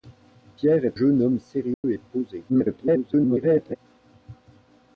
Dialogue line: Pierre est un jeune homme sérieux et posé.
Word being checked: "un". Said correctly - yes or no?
no